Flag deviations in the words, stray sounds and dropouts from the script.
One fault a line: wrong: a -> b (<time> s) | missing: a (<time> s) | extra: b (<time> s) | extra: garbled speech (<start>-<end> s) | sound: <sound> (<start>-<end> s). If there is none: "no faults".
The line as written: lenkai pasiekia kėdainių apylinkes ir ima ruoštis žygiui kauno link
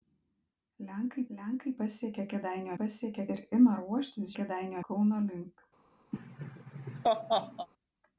extra: lenkai (1.3 s)
wrong: apylinkes -> pasiekia (2.8 s)
wrong: žygiui -> kėdainių (4.4 s)
sound: laugh (6.1-7.7 s)